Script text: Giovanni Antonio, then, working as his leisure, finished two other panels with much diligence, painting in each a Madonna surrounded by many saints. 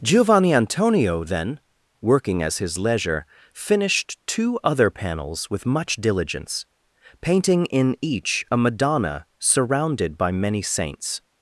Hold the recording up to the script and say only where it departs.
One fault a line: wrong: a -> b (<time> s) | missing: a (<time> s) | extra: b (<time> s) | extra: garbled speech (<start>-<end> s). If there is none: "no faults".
no faults